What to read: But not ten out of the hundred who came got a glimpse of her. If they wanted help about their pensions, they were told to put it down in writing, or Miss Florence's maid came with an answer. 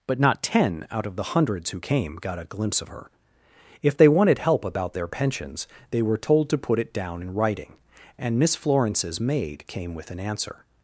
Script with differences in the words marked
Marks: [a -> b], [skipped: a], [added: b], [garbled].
But not ten out of the [hundred -> hundreds] who came got a glimpse of her. If they wanted help about their pensions, they were told to put it down in writing, [or -> and] Miss Florence's maid came with an answer.